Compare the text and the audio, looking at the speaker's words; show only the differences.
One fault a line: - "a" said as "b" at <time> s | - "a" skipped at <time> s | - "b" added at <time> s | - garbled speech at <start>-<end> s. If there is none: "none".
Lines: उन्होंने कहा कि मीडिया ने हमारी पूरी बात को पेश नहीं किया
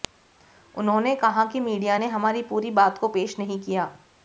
none